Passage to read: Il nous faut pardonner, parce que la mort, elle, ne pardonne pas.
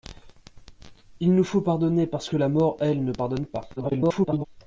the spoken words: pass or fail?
fail